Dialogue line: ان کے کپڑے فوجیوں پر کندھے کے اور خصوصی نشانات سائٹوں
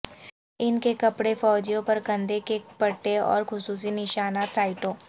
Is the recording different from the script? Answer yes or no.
yes